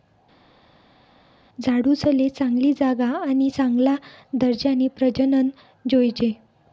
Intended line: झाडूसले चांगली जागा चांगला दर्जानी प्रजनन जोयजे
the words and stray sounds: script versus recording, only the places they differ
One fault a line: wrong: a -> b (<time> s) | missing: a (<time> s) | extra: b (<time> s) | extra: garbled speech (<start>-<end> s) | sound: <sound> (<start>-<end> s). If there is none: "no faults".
extra: आणि (3.2 s)